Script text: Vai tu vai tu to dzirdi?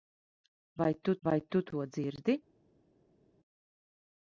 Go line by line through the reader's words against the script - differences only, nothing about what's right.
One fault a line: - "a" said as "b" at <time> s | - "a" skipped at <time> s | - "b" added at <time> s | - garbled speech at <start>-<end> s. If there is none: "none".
none